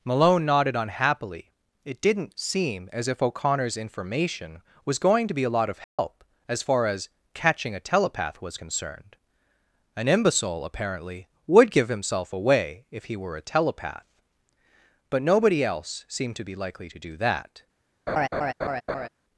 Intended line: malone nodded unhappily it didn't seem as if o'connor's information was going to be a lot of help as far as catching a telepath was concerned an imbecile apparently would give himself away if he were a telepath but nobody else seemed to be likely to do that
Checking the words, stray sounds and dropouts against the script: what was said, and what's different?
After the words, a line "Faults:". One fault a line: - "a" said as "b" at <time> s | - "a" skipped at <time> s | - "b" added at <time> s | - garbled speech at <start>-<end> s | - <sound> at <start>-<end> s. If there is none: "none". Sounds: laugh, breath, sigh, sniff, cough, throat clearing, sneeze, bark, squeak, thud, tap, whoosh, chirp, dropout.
malone nodded unhappily it didn't seem as if o'connor's information was going to be a lot of help as far as catching a telepath was concerned an imbecile apparently would give himself away if he were a telepath but nobody else seemed to be likely to do that
Faults:
- dropout at 5.8-6.0 s
- laugh at 18.1-19.1 s